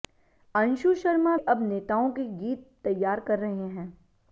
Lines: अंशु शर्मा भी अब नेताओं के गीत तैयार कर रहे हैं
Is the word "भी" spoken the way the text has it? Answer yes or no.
no